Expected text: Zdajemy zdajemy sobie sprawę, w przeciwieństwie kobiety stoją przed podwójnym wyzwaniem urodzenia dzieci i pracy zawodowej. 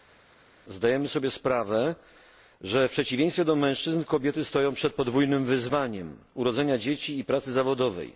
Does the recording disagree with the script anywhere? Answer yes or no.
yes